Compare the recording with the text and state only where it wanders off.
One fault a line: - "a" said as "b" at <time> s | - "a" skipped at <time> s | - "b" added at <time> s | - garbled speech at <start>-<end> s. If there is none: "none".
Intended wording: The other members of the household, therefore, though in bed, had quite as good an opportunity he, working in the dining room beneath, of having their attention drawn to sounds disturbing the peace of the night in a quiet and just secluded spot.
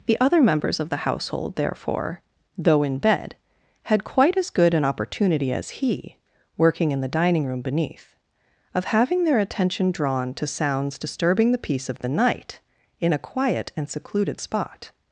- "as" added at 5.5 s
- "just" skipped at 13.9 s